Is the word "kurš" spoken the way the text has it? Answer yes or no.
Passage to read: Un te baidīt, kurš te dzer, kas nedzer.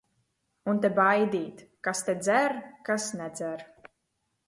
no